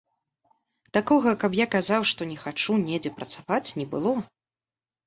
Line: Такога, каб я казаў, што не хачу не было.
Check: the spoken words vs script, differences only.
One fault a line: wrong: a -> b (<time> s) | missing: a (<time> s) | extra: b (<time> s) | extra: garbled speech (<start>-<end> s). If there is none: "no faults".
extra: недзе працаваць (2.9 s)